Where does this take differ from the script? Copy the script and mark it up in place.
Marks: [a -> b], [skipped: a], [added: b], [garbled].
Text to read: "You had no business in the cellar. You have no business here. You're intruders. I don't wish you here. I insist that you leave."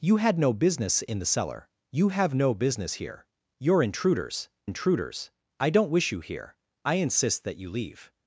"You had no business in the cellar. You have no business here. You're intruders. [added: intruders] I don't wish you here. I insist that you leave."